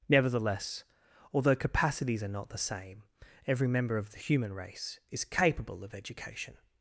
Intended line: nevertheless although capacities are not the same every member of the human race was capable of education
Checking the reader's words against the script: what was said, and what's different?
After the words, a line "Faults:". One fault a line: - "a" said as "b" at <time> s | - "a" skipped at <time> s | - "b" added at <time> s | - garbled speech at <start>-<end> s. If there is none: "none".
nevertheless although capacities are not the same every member of the human race is capable of education
Faults:
- "was" said as "is" at 5.1 s